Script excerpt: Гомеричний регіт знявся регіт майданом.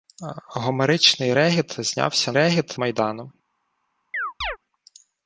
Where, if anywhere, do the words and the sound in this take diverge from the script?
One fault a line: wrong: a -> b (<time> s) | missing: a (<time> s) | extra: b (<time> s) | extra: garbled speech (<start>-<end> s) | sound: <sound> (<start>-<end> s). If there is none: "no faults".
sound: chirp (4.1-4.6 s)